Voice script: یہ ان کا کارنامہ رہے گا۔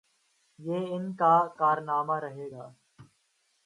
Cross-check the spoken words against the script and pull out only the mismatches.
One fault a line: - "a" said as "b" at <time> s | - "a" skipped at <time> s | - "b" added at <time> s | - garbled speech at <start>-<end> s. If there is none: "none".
none